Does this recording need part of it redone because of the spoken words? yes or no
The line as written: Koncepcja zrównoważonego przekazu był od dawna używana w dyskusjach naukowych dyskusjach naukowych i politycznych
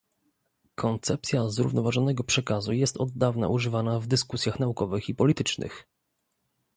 yes